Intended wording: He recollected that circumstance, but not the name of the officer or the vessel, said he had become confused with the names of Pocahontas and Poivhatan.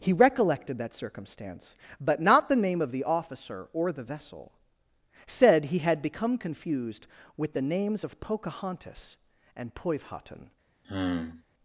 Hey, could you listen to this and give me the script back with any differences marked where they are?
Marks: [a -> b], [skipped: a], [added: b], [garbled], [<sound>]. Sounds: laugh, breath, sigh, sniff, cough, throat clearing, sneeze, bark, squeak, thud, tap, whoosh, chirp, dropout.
He recollected that circumstance, but not the name of the officer or the vessel, said he had become confused with the names of Pocahontas and Poivhatan. [sigh]